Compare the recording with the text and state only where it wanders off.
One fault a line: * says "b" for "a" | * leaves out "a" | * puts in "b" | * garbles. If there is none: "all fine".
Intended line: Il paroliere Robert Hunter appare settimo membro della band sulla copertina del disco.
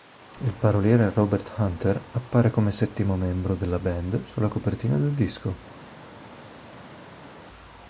* puts in "come"